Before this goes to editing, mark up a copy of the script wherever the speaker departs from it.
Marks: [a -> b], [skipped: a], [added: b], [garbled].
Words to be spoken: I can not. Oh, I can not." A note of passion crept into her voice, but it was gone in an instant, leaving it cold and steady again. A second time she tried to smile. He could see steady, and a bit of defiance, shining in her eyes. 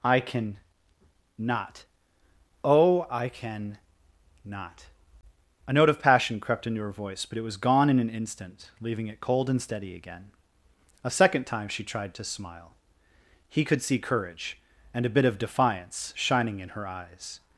I can not. Oh, I can not." A note of passion crept into her voice, but it was gone in an instant, leaving it cold and steady again. A second time she tried to smile. He could see [steady, -> courage] and a bit of defiance, shining in her eyes.